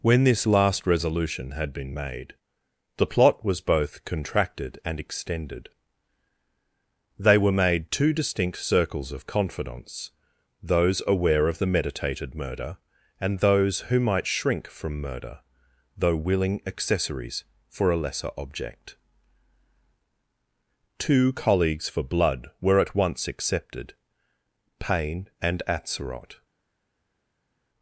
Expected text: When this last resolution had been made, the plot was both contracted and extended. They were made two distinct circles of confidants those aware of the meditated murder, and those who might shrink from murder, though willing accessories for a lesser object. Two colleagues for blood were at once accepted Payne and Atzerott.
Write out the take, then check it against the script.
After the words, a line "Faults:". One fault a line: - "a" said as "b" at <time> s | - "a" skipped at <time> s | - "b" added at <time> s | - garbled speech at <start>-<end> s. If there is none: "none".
When this last resolution had been made, the plot was both contracted and extended. They were made two distinct circles of confidants those aware of the meditated murder, and those who might shrink from murder, though willing accessories for a lesser object. Two colleagues for blood were at once accepted Payne and Atzerott.
Faults:
none